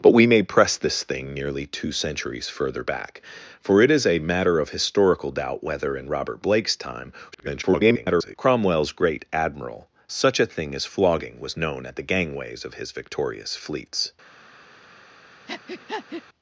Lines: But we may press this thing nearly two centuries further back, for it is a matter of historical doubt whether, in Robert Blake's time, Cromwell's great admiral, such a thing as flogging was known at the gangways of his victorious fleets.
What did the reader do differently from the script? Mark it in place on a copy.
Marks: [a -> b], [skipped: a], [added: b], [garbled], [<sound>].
But we may press this thing nearly two centuries further back, for it is a matter of historical doubt whether, in Robert Blake's time, [garbled] Cromwell's great admiral, such a thing as flogging was known at the gangways of his victorious fleets. [breath]